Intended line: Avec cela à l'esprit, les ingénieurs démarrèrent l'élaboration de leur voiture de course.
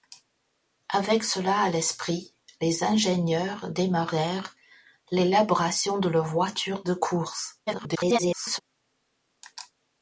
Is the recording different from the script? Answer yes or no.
yes